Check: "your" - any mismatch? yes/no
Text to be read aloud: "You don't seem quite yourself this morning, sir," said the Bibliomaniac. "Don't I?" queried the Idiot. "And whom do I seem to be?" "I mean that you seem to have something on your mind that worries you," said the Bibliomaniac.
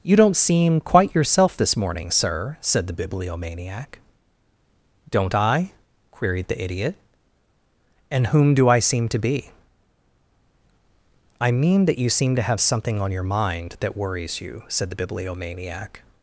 no